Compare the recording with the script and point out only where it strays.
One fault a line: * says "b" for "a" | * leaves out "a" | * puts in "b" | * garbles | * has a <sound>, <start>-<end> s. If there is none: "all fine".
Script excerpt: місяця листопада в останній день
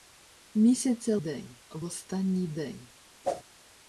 * says "день" for "листопада"
* has a whoosh, 3.2-3.4 s